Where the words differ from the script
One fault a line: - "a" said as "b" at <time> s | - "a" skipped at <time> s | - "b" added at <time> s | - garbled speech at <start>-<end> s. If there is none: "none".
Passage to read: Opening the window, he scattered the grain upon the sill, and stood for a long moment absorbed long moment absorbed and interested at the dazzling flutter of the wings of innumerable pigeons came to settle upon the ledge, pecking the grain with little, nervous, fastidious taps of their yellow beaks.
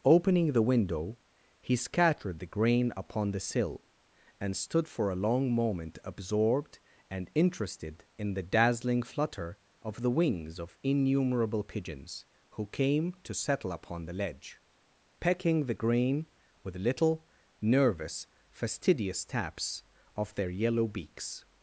- "long moment absorbed" skipped at 6.8 s
- "at" said as "in" at 8.2 s
- "who" added at 12.5 s